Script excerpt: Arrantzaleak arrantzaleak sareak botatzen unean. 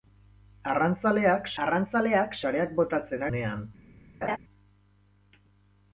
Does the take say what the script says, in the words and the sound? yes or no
no